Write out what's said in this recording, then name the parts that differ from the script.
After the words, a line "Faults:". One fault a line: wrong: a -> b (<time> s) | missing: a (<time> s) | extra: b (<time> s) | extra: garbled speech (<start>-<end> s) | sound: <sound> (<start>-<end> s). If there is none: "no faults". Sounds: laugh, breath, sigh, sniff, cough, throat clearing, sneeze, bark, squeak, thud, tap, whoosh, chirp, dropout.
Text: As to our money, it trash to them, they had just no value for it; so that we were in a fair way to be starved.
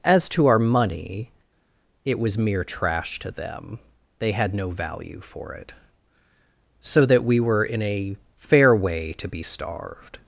As to our money, it was mere trash to them, they had no value for it; so that we were in a fair way to be starved.
Faults:
extra: was mere (2.2 s)
missing: just (4.5 s)